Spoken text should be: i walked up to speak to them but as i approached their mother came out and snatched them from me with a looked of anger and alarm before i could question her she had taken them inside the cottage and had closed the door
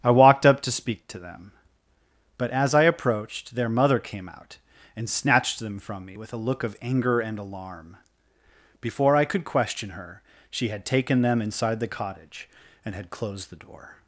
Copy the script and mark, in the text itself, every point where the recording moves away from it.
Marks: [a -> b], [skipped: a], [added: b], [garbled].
i walked up to speak to them but as i approached their mother came out and snatched them from me with a [looked -> look] of anger and alarm before i could question her she had taken them inside the cottage and had closed the door